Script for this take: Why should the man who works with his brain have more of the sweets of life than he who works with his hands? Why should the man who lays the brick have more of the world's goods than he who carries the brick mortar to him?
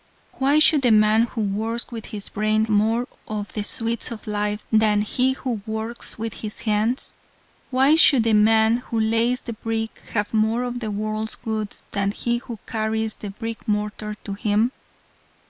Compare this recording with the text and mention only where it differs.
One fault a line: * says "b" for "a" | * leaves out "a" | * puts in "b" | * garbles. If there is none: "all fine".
* leaves out "have"